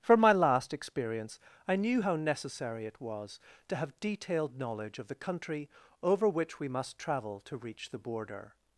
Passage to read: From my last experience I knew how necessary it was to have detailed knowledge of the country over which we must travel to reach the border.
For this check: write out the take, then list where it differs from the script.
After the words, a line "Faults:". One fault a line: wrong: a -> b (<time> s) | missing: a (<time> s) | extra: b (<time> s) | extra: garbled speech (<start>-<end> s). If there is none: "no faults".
From my last experience I knew how necessary it was to have detailed knowledge of the country over which we must travel to reach the border.
Faults:
no faults